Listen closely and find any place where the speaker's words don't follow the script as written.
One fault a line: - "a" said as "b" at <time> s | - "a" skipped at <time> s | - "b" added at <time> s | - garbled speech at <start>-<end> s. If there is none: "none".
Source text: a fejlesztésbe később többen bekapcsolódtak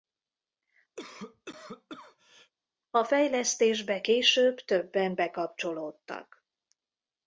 none